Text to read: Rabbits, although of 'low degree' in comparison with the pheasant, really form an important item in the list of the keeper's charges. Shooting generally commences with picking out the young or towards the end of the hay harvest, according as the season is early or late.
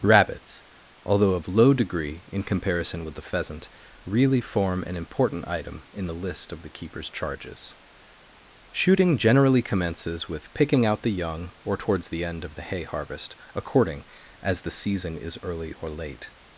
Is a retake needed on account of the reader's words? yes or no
no